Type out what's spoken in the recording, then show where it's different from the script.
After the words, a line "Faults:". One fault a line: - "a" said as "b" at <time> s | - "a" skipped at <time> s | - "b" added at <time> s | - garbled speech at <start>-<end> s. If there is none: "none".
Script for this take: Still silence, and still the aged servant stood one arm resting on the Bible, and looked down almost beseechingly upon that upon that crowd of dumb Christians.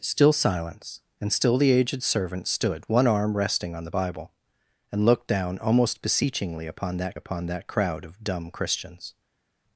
Still silence, and still the aged servant stood one arm resting on the Bible, and looked down almost beseechingly upon that upon that crowd of dumb Christians.
Faults:
none